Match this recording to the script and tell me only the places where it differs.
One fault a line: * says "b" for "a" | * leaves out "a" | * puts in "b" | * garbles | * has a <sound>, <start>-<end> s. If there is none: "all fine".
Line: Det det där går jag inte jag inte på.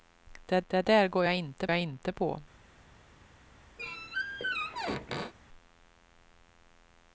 * has a squeak, 3.8-5.3 s